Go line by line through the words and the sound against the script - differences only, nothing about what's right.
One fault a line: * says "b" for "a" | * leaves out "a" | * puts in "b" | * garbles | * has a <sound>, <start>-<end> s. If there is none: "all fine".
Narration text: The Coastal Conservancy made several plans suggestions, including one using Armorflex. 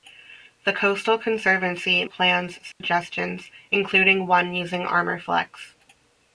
* leaves out "made several"
* has a dropout, 2.7-2.8 s